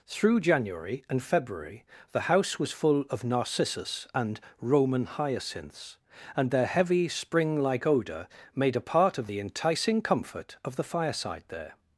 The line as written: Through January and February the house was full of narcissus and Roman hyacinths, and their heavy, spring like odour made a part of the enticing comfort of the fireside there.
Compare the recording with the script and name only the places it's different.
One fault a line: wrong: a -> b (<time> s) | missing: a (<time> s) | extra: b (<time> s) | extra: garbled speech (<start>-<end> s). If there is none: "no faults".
no faults